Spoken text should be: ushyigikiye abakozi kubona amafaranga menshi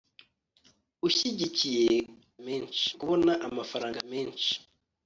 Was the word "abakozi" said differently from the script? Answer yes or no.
yes